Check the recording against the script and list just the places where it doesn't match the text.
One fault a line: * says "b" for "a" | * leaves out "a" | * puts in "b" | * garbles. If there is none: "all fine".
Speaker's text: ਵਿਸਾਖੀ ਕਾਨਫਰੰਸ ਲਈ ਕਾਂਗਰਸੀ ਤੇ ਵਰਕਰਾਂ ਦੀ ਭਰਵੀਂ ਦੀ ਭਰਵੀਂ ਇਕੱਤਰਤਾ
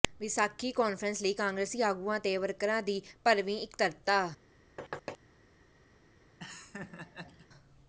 * puts in "ਆਗੂਆਂ"
* leaves out "ਦੀ ਭਰਵੀਂ"